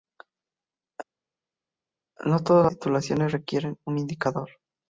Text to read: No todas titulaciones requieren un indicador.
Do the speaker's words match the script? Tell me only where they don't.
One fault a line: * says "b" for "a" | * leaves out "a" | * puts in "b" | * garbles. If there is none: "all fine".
all fine